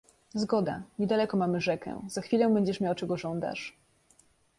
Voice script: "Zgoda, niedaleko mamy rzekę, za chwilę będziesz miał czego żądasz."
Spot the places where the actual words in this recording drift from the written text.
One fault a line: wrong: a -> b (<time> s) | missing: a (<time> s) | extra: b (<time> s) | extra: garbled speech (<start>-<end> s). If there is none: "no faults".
no faults